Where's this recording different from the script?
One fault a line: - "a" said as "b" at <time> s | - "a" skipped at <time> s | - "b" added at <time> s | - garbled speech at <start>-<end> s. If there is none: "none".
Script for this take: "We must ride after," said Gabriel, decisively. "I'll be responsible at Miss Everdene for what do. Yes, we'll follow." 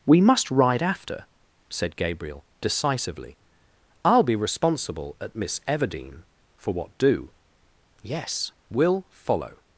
none